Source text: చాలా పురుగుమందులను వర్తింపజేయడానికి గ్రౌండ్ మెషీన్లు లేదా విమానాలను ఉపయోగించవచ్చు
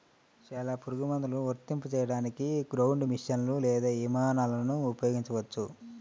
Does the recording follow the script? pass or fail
pass